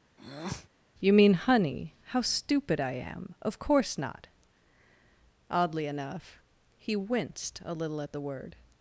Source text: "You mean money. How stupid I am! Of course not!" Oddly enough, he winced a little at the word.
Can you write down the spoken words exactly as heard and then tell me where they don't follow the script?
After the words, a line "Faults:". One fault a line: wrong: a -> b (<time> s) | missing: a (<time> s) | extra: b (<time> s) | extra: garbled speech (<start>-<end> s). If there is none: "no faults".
"You mean honey. How stupid I am! Of course not!" Oddly enough, he winced a little at the word.
Faults:
wrong: money -> honey (1.3 s)